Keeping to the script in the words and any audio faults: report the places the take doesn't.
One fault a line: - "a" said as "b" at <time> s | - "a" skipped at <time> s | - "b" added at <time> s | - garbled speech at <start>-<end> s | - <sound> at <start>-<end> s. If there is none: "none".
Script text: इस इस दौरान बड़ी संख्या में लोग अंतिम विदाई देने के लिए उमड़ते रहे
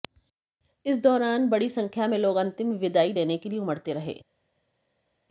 - "इस" skipped at 1.0 s